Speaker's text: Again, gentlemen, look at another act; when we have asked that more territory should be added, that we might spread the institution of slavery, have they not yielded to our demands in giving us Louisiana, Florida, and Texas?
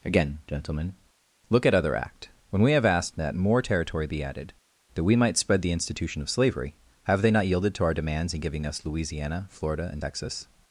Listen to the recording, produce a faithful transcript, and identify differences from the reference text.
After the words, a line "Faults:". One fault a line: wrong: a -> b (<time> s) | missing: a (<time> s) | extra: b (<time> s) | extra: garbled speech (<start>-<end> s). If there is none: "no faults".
Again, gentlemen, look at other act; when we have asked that more territory be added, that we might spread the institution of slavery, have they not yielded to our demands in giving us Louisiana, Florida, and Texas?
Faults:
wrong: another -> other (1.7 s)
missing: should (4.1 s)